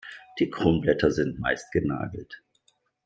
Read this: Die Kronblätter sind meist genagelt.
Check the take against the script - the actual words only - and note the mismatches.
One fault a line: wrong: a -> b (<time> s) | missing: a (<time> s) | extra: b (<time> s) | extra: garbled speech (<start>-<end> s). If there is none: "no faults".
no faults